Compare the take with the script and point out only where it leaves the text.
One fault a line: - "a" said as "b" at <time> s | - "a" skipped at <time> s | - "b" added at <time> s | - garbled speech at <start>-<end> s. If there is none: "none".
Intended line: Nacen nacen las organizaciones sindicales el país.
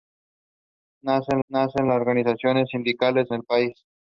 none